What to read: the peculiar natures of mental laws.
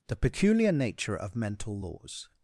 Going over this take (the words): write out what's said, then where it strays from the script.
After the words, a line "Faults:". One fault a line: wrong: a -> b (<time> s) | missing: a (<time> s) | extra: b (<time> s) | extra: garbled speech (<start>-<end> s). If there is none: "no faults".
the peculiar nature of mental laws.
Faults:
wrong: natures -> nature (0.7 s)